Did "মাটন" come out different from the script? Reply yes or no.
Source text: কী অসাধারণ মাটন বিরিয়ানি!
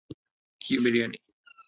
yes